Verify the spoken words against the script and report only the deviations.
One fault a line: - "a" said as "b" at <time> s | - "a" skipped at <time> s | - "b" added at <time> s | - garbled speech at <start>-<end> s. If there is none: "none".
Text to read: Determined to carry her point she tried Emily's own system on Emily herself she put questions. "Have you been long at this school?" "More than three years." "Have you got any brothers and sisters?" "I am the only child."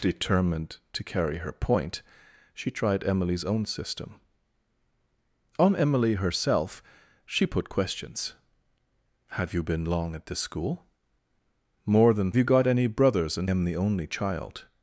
- "three years Have" skipped at 12.3 s
- "sisters I" skipped at 13.5 s